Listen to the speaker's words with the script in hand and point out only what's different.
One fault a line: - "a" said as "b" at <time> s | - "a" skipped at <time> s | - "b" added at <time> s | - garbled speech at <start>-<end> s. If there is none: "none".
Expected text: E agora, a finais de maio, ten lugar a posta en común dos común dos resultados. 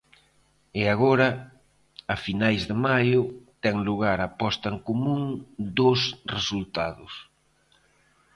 - "común dos" skipped at 6.0 s